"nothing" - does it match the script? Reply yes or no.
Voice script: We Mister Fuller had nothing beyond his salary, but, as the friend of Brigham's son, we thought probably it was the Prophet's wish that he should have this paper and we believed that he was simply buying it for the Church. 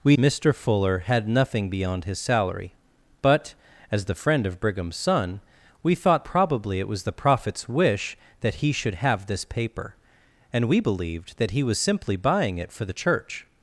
yes